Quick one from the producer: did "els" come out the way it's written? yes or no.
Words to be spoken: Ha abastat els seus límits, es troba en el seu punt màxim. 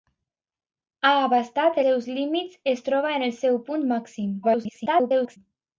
no